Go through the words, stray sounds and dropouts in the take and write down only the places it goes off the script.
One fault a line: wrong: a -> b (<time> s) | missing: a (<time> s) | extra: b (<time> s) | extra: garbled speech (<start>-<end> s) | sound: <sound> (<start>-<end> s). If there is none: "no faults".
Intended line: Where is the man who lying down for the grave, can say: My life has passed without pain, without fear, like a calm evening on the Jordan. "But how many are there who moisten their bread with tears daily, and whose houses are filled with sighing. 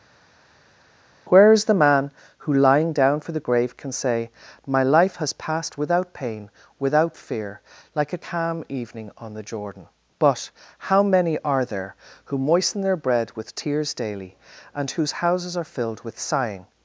no faults